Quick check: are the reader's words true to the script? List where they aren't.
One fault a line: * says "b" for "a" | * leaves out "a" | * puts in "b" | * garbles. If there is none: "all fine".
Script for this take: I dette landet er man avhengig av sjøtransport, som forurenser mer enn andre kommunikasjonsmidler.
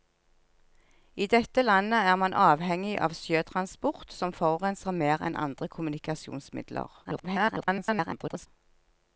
* garbles